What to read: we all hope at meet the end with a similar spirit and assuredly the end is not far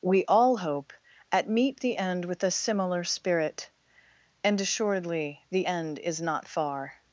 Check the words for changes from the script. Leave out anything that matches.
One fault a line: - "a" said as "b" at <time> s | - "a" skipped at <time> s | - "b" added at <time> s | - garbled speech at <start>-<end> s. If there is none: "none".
none